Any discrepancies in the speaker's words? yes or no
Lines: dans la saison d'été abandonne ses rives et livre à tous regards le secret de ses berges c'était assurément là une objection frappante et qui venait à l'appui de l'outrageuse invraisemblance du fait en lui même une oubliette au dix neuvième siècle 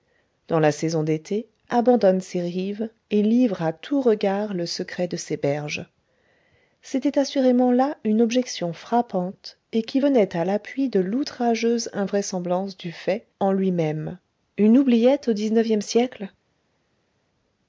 no